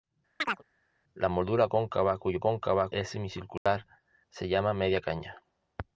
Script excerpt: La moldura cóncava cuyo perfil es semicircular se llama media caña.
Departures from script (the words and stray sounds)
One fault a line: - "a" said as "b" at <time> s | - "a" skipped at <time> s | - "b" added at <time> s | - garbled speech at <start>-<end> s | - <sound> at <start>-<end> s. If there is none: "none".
- chirp at 0.4-0.6 s
- "perfil" said as "cóncava" at 2.4 s
- dropout at 3.6-3.7 s